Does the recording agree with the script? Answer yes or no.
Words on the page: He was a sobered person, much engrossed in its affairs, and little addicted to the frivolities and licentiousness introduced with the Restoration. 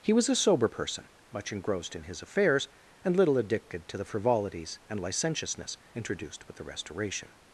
no